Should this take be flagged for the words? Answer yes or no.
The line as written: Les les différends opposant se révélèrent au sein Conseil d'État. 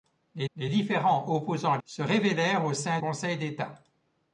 no